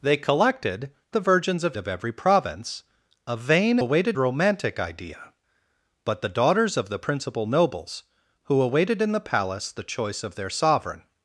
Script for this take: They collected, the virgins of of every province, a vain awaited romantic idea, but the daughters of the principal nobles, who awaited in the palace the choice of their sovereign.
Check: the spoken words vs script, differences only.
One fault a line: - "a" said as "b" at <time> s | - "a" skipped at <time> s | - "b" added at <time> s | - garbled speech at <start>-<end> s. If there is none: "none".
none